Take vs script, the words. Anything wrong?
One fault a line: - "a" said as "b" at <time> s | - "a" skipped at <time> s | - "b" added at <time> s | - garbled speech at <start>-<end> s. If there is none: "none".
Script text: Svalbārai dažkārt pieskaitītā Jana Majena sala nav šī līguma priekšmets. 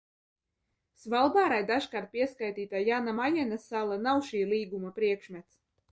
none